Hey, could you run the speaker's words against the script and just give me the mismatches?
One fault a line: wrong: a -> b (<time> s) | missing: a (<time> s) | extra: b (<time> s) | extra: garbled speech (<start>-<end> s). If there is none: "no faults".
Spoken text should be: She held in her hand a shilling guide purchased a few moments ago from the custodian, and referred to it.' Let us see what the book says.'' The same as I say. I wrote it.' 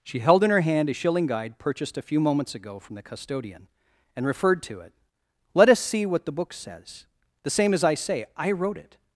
no faults